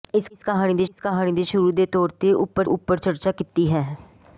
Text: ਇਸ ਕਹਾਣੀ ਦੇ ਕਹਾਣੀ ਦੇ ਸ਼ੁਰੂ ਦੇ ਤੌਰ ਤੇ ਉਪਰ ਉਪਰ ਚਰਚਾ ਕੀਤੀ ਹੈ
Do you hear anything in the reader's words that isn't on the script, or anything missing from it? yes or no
no